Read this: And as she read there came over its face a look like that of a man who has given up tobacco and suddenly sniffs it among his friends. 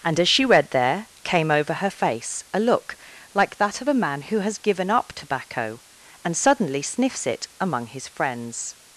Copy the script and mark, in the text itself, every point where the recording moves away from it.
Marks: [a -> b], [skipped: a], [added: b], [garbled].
And as she read there came over [its -> her] face a look like that of a man who has given up tobacco and suddenly sniffs it among his friends.